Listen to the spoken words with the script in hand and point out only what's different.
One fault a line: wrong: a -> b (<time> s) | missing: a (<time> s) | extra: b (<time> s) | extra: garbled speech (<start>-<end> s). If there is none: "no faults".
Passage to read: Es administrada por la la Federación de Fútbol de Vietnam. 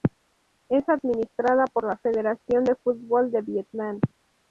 missing: la (2.0 s)